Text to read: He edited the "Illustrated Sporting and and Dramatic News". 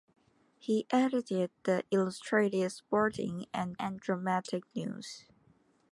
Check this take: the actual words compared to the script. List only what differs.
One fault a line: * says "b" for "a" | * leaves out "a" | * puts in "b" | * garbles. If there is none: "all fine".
all fine